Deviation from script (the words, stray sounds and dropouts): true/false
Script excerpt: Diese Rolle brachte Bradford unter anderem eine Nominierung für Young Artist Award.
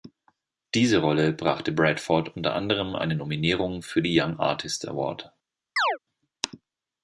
true